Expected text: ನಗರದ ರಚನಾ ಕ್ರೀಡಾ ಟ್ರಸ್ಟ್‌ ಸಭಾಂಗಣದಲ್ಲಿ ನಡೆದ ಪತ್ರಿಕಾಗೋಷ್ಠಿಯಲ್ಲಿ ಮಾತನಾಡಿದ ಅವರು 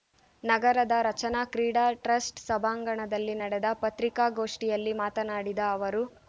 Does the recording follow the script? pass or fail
pass